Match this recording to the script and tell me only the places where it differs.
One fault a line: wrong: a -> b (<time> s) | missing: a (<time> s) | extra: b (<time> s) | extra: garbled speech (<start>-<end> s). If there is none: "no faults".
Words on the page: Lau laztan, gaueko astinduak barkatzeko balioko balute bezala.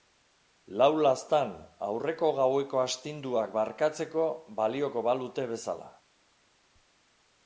extra: aurreko (1.9 s)